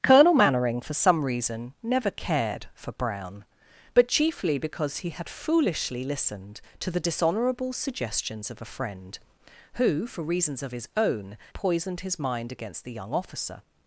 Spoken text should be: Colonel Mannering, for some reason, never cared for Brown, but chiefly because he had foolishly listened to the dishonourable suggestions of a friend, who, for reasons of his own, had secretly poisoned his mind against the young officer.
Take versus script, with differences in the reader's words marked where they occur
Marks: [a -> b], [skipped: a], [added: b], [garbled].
Colonel Mannering, for some reason, never cared for Brown, but chiefly because he had foolishly listened to the dishonourable suggestions of a friend, who, for reasons of his own, [skipped: had secretly] poisoned his mind against the young officer.